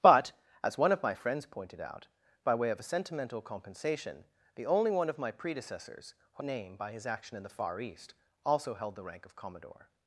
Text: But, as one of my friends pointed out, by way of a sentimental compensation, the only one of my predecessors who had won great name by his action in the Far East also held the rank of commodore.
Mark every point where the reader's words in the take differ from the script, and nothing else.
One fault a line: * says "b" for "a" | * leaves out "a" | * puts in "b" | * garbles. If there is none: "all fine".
* leaves out "had won great"